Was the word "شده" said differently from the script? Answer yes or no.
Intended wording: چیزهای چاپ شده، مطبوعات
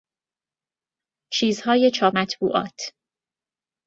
yes